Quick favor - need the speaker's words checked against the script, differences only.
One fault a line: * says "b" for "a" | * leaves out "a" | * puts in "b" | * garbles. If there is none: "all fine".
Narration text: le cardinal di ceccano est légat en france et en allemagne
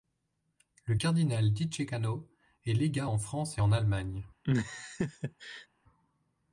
all fine